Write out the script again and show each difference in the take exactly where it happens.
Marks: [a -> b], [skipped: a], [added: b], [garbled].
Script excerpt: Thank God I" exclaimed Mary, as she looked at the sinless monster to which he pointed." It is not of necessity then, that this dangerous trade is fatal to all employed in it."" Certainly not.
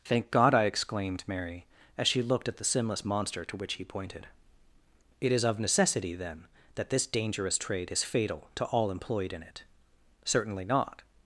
Thank God I" exclaimed Mary, as she looked at the sinless monster to which he pointed." It is [skipped: not] of necessity then, that this dangerous trade is fatal to all employed in it."" Certainly not.